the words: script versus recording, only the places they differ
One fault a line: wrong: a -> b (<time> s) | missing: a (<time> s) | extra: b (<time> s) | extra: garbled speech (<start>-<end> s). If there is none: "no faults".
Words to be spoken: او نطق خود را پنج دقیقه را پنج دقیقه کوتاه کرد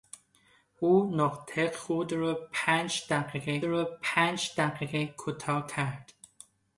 no faults